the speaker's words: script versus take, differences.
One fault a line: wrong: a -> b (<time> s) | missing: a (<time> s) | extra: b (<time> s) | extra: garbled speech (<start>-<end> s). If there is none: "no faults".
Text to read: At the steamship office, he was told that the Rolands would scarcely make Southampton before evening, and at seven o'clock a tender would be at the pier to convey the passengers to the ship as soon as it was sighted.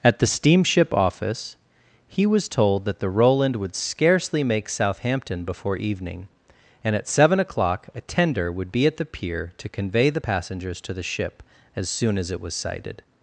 wrong: Rolands -> Roland (3.1 s)